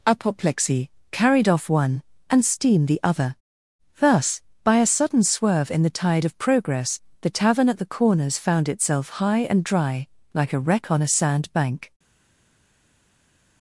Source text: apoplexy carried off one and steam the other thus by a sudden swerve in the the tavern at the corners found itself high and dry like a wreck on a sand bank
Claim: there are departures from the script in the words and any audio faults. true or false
true